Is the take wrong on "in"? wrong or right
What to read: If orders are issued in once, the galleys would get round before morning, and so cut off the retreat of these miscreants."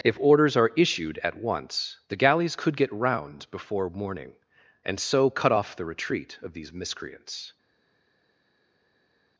wrong